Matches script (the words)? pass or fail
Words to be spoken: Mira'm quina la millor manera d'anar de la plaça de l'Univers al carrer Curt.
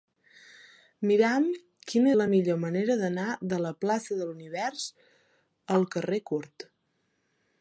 pass